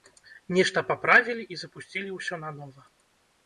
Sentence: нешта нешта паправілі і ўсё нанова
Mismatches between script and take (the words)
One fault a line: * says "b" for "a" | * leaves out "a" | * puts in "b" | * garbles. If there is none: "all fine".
* leaves out "нешта"
* puts in "запусцілі"